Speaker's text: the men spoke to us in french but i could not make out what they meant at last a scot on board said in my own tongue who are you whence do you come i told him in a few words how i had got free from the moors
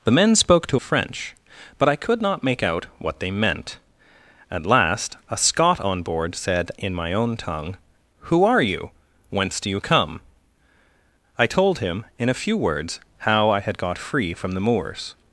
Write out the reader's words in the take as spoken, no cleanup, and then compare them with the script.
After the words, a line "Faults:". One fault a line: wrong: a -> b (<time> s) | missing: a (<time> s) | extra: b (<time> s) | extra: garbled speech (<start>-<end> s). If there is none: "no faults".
the men spoke to french but i could not make out what they meant at last a scot on board said in my own tongue who are you whence do you come i told him in a few words how i had got free from the moors
Faults:
missing: us in (0.8 s)